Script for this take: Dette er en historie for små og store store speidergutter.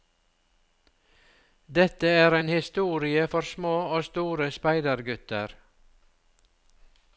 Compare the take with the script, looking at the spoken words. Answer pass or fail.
fail